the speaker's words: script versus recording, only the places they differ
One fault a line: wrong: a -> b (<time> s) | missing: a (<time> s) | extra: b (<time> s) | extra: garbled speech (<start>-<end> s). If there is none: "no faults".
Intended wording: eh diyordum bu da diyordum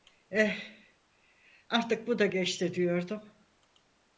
wrong: diyordum -> artık (1.7 s)
extra: geçti (2.3 s)